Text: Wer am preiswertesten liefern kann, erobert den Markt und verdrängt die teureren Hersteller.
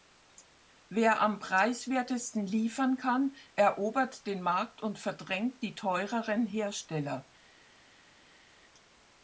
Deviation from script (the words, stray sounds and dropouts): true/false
false